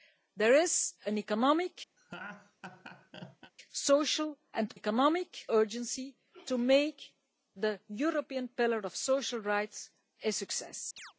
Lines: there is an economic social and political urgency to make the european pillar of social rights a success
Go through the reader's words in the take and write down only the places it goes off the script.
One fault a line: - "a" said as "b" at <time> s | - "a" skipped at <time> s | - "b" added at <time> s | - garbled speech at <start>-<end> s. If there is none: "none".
- "political" said as "economic" at 4.7 s